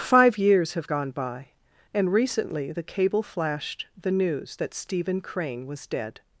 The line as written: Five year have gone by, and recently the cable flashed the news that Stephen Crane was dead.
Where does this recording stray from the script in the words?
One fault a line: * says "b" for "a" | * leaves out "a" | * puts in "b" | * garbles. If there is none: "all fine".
* says "years" for "year"